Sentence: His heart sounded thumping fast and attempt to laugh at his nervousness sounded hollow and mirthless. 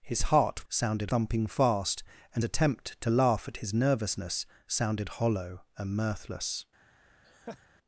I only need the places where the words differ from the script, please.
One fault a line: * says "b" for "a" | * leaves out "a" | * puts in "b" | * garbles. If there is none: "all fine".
all fine